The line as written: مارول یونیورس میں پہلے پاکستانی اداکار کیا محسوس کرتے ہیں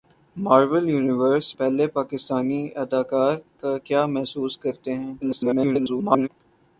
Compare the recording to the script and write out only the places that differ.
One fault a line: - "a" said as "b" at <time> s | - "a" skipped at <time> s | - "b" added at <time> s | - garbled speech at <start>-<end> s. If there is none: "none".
- "میں" skipped at 1.5 s
- garbled speech at 5.2-6.3 s